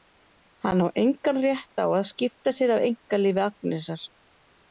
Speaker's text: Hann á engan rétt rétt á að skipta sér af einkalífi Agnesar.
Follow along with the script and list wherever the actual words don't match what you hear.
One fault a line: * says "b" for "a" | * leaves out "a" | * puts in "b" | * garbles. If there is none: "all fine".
* leaves out "rétt"